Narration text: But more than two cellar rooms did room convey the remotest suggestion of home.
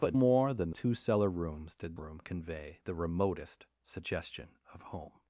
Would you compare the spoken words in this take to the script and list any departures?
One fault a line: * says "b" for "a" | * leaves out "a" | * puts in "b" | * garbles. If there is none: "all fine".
all fine